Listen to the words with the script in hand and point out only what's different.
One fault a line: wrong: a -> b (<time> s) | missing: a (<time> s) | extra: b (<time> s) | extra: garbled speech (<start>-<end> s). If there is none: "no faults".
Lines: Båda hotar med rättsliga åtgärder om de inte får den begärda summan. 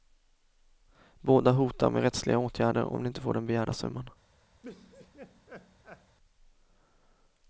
no faults